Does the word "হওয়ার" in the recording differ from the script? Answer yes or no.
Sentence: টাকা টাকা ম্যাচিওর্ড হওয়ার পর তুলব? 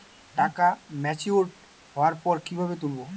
no